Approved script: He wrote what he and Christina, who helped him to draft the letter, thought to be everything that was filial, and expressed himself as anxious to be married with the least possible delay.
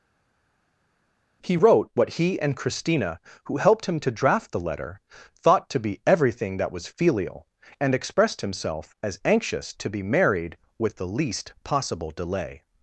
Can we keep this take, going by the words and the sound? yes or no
yes